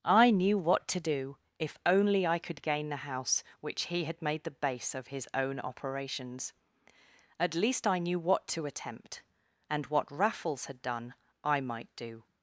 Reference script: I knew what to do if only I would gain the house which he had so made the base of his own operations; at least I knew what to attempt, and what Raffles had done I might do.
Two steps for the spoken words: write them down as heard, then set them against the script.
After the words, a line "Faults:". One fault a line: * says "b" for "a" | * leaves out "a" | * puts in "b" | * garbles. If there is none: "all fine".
I knew what to do if only I could gain the house which he had made the base of his own operations; at least I knew what to attempt, and what Raffles had done I might do.
Faults:
* says "could" for "would"
* leaves out "so"